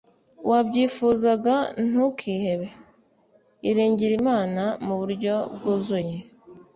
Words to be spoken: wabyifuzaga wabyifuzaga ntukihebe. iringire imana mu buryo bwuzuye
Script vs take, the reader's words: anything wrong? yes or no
yes